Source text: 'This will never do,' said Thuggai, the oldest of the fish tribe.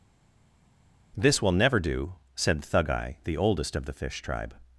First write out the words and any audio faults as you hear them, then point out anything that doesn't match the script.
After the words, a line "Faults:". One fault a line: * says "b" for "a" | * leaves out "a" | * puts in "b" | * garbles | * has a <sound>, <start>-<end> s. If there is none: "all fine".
'This will never do,' said Thuggai, the oldest of the fish tribe.
Faults:
all fine